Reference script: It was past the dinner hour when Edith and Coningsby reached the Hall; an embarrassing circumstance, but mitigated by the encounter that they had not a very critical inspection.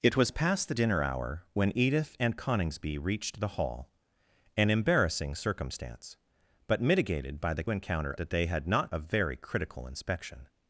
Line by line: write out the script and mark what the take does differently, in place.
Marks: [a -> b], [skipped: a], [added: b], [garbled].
It was past the dinner hour when Edith and Coningsby reached the Hall; an embarrassing circumstance, but mitigated by the encounter that they had not a very critical inspection.